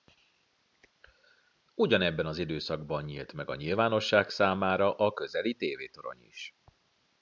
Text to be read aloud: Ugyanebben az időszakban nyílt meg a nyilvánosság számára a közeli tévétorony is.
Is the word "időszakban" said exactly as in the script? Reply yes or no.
yes